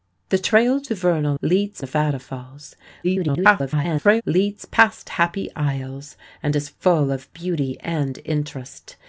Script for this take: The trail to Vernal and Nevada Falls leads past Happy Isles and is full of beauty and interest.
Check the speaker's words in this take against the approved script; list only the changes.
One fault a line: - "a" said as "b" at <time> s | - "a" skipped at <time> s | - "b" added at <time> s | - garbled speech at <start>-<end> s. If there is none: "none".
- "and" said as "leads" at 1.4 s
- garbled speech at 3.0-4.2 s